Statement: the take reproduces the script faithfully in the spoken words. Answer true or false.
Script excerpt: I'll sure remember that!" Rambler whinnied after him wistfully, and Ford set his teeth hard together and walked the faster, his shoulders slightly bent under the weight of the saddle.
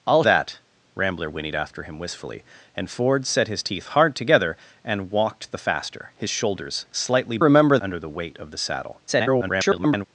false